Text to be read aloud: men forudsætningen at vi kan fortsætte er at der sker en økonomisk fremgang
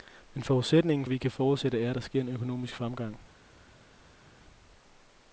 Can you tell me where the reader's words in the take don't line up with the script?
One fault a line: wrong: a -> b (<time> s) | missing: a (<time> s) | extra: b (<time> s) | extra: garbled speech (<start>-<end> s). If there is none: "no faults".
no faults